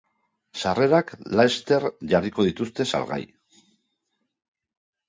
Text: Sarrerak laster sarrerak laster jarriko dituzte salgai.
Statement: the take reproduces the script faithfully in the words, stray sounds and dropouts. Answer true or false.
false